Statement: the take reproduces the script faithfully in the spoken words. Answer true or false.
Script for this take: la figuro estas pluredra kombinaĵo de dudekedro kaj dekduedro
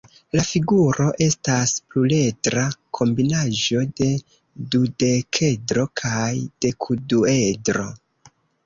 true